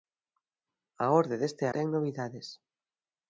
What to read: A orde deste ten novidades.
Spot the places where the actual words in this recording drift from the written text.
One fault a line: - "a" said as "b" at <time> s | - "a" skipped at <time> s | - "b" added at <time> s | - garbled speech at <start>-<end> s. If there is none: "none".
none